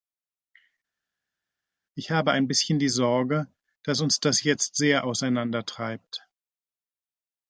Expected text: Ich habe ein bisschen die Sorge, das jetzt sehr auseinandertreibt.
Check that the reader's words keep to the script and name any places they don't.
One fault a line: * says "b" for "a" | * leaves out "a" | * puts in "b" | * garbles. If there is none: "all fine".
* puts in "dass uns"